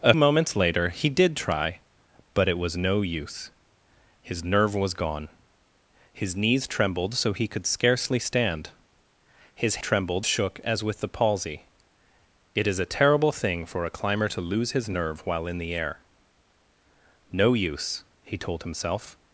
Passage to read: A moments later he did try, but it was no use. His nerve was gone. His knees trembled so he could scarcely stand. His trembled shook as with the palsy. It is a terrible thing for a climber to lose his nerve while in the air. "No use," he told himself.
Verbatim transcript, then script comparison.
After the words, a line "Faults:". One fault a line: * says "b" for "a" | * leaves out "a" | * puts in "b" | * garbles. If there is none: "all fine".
A moments later he did try, but it was no use. His nerve was gone. His knees trembled so he could scarcely stand. His trembled shook as with the palsy. It is a terrible thing for a climber to lose his nerve while in the air. "No use," he told himself.
Faults:
all fine